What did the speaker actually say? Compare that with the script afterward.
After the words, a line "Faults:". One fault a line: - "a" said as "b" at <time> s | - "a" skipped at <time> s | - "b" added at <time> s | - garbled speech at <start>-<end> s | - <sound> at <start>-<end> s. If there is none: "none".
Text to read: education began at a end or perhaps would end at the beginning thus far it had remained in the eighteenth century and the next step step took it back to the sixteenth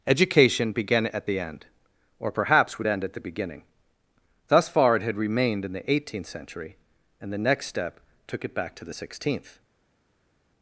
education began at the end or perhaps would end at the beginning thus far it had remained in the eighteenth century and the next step took it back to the sixteenth
Faults:
- "a" said as "the" at 1.2 s
- "step" skipped at 8.0 s